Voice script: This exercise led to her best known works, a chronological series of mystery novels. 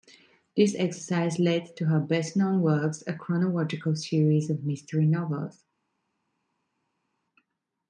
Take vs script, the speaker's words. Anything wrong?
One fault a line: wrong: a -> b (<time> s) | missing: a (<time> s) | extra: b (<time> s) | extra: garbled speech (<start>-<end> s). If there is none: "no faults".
no faults